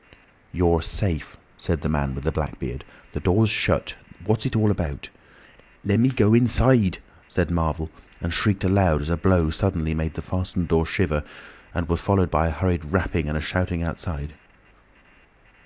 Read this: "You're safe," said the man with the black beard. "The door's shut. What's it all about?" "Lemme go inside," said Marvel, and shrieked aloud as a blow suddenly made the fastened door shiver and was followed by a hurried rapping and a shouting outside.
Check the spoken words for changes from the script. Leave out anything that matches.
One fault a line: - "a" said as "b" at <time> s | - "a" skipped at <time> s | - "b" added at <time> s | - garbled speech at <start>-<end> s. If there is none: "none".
none